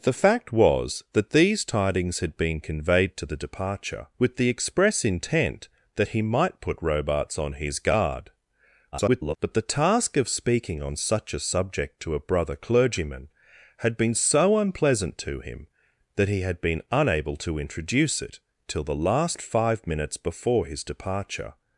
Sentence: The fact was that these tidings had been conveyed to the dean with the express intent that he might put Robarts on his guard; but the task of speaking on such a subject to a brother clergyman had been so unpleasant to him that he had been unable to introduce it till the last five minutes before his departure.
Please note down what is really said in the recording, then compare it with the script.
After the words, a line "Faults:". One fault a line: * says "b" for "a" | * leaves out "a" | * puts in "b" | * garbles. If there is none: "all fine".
The fact was that these tidings had been conveyed to the departure with the express intent that he might put Robarts on his guard; [garbled] but the task of speaking on such a subject to a brother clergyman had been so unpleasant to him that he had been unable to introduce it till the last five minutes before his departure.
Faults:
* says "departure" for "dean"
* garbles